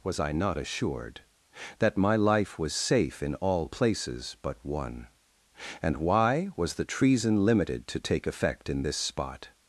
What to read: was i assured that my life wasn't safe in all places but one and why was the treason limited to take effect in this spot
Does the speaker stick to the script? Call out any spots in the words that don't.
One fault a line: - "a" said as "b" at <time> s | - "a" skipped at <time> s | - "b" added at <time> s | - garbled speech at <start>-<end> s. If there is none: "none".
- "not" added at 0.3 s
- "wasn't" said as "was" at 2.6 s